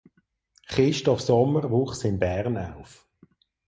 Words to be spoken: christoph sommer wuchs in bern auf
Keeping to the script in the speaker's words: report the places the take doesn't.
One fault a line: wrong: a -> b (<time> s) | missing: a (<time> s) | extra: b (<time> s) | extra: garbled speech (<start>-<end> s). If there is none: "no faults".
no faults